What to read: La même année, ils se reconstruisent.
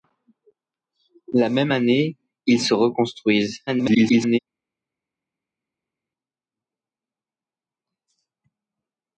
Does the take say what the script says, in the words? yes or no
no